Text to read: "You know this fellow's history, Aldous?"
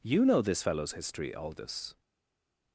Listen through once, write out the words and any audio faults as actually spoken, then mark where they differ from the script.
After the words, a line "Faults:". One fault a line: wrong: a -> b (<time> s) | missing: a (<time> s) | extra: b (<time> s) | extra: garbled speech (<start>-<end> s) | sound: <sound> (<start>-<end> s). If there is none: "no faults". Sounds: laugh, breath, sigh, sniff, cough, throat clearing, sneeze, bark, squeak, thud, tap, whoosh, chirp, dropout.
"You know this fellow's history, Aldous?"
Faults:
no faults